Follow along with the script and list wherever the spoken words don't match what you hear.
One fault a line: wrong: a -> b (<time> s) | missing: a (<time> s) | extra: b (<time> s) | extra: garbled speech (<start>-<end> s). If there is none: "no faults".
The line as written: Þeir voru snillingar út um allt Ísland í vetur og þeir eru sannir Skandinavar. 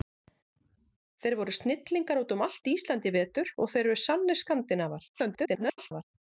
extra: garbled speech (5.1-6.0 s)